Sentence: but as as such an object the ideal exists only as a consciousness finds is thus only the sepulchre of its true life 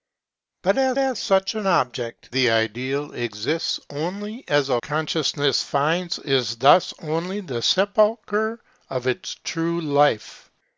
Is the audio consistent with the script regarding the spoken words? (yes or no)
yes